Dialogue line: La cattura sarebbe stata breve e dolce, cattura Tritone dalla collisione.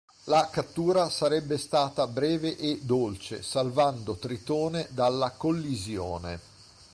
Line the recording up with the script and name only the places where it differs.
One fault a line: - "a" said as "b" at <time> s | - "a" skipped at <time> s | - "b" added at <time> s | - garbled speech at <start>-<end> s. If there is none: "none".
- "cattura" said as "salvando" at 3.4 s